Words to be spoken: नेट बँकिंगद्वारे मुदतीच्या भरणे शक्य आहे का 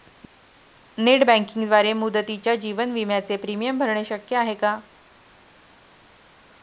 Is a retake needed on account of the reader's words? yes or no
yes